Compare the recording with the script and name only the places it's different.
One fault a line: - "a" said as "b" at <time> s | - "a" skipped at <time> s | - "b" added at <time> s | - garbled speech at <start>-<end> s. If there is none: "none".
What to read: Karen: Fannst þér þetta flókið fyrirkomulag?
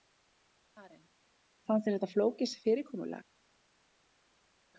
none